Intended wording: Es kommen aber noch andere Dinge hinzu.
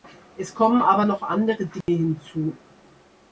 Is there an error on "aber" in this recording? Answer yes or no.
no